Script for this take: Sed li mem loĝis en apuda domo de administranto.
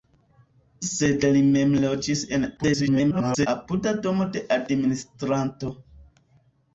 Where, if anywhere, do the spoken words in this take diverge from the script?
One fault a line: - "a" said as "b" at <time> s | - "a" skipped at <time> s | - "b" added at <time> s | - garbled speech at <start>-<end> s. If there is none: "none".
- garbled speech at 2.6-3.5 s